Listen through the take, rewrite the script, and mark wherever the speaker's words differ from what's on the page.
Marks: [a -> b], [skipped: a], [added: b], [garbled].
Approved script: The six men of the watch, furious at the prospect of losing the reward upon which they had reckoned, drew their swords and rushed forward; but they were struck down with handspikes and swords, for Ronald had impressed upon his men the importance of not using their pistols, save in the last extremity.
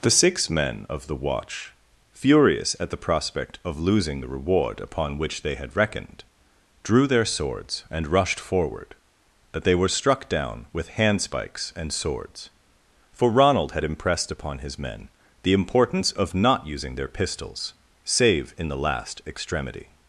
The six men of the watch, furious at the prospect of losing the reward upon which they had reckoned, drew their swords and rushed forward; but they were struck down with handspikes and swords, for Ronald had impressed upon his men the importance of not using their pistols, save in the last extremity.